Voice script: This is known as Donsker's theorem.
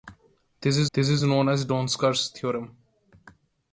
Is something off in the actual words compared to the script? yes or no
yes